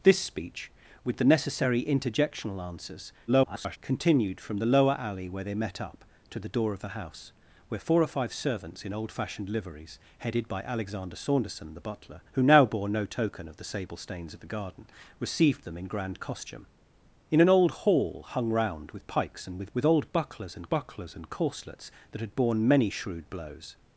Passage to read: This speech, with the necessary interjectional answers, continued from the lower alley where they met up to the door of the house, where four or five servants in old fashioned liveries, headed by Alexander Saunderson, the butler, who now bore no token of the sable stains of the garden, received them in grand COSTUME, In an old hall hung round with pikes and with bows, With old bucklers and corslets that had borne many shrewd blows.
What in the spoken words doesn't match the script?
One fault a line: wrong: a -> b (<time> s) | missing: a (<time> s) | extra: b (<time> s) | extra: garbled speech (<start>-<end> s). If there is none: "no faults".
extra: garbled speech (3.3-3.8 s)
missing: bows (19.7 s)
extra: bucklers and (20.7 s)